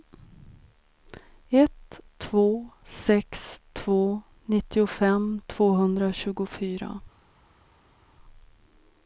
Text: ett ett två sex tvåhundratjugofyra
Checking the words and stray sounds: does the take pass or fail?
fail